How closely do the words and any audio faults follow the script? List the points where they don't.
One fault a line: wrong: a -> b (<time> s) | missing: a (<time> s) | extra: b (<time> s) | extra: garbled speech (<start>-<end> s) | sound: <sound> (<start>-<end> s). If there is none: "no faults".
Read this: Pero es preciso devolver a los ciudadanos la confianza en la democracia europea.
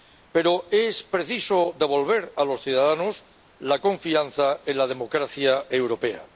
no faults